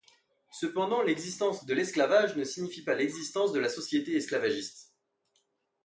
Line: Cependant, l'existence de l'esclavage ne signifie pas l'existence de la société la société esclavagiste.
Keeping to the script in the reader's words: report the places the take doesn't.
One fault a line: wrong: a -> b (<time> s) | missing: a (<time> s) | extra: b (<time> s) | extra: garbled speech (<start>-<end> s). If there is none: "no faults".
missing: la société (4.2 s)